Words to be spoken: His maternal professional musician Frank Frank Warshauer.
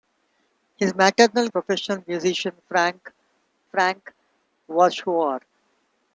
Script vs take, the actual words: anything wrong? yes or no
no